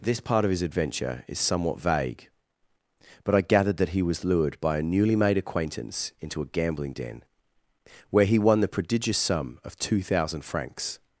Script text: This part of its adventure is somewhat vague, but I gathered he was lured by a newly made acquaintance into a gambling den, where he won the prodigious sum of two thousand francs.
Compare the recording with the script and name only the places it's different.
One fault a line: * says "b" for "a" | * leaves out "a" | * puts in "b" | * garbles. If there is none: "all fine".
* says "his" for "its"
* puts in "that"